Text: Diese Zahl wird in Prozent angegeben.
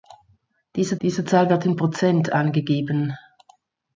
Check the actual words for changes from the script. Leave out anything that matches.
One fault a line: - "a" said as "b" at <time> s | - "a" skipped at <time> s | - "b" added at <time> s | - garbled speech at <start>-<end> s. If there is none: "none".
- "diese" added at 1.0 s